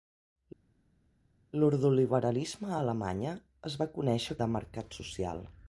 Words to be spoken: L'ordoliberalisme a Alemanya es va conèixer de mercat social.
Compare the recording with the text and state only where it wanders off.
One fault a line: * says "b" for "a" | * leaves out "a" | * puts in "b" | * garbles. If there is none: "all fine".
all fine